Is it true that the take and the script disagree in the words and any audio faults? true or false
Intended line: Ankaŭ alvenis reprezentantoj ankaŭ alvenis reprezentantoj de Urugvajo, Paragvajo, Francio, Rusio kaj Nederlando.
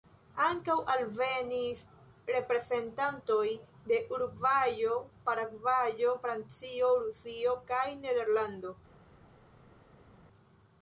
true